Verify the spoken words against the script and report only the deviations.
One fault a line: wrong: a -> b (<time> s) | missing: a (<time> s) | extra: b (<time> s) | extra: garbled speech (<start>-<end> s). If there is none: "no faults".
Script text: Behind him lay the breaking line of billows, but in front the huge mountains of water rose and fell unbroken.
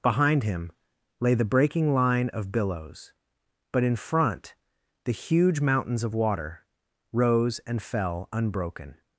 no faults